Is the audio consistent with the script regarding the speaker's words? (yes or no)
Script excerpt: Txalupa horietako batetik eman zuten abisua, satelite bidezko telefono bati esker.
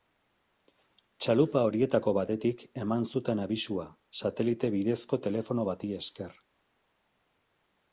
yes